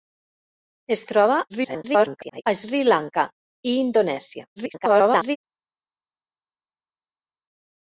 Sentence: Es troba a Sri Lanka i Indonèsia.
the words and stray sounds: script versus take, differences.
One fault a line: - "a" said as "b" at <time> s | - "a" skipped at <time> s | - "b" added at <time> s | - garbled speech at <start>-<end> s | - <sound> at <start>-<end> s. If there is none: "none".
- garbled speech at 1.5-2.4 s
- garbled speech at 4.6-5.4 s